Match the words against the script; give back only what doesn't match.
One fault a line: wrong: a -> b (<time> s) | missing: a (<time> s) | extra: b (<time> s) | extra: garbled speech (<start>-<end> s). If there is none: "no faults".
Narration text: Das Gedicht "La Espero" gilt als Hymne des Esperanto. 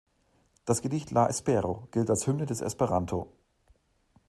no faults